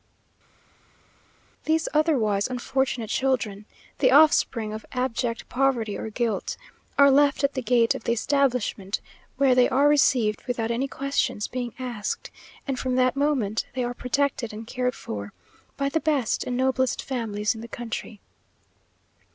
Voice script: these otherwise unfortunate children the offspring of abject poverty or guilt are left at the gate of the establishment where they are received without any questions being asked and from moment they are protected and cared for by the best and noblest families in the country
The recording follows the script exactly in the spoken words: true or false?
false